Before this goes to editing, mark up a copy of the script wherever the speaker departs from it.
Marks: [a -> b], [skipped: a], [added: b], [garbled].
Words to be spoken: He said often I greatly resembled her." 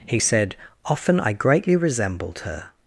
He said often I greatly resembled her."